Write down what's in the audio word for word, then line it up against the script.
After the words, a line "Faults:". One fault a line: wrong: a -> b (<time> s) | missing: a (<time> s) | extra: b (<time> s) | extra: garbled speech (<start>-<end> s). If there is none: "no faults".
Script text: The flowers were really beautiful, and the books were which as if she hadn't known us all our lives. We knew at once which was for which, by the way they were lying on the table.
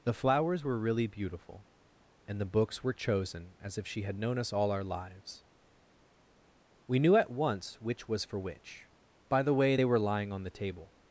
The flowers were really beautiful, and the books were chosen as if she had known us all our lives. We knew at once which was for which, by the way they were lying on the table.
Faults:
wrong: which -> chosen (2.9 s)
wrong: hadn't -> had (4.0 s)